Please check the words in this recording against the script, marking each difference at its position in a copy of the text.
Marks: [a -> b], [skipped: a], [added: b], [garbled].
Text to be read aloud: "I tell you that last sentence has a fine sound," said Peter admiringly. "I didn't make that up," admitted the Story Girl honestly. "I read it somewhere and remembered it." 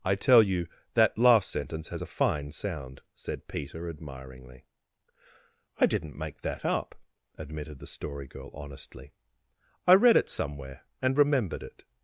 "I tell you that last sentence has a fine sound," said Peter admiringly. "I didn't make that up," admitted the Story Girl honestly. "I read it somewhere and remembered it."